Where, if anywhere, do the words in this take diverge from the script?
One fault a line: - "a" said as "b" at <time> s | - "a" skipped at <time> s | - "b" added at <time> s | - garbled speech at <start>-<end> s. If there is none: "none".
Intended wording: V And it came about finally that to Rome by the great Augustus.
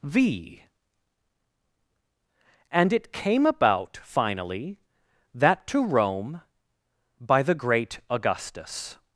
none